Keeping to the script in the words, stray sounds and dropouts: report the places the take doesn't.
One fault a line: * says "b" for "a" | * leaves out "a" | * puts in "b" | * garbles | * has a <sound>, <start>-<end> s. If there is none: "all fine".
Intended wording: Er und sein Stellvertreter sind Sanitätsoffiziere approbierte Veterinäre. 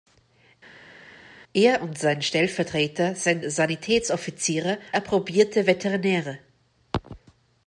all fine